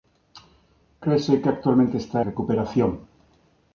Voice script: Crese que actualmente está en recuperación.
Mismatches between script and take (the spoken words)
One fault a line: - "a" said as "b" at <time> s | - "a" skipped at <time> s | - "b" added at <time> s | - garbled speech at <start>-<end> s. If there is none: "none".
- "en" skipped at 2.2 s